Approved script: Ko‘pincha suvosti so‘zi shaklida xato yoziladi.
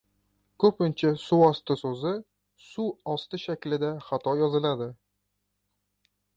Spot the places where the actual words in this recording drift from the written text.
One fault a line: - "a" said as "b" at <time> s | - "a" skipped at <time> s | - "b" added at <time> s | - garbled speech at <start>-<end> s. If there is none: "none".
- "suv osti" added at 2.7 s